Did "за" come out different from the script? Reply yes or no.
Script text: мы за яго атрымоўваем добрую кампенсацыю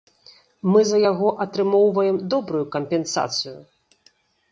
no